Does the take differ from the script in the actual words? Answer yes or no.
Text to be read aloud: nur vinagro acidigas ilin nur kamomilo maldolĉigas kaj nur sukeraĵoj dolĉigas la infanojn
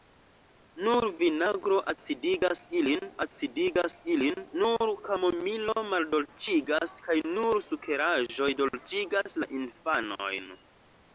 yes